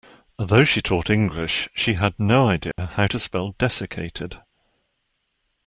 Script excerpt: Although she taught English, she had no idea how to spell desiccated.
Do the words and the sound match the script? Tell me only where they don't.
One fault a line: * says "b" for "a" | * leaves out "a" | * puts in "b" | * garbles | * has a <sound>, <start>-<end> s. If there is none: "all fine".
* has a dropout, 2.7-2.8 s